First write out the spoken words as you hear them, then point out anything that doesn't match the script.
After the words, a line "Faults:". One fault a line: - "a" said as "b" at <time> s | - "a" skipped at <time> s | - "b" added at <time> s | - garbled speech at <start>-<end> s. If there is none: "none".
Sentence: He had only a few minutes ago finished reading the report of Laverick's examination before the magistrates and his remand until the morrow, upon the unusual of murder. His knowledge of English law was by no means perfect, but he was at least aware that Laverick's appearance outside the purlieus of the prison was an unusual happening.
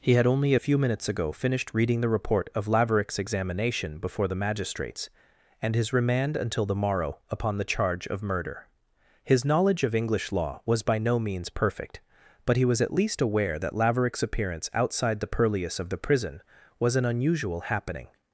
He had only a few minutes ago finished reading the report of Laverick's examination before the magistrates and his remand until the morrow, upon the charge of murder. His knowledge of English law was by no means perfect, but he was at least aware that Laverick's appearance outside the purlieus of the prison was an unusual happening.
Faults:
- "unusual" said as "charge" at 7.7 s